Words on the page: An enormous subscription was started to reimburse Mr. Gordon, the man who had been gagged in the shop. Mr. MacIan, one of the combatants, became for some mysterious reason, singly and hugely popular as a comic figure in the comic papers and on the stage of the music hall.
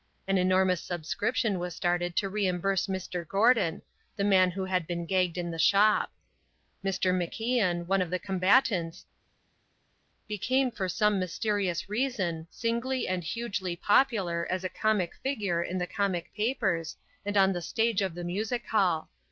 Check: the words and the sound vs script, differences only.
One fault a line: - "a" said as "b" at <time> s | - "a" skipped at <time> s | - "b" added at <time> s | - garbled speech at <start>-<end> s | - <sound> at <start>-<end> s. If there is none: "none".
none